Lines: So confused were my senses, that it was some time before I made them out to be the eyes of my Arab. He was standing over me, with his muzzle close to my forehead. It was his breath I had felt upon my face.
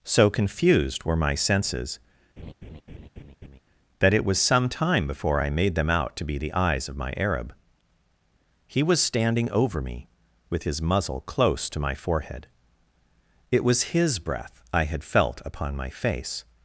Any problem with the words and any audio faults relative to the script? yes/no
yes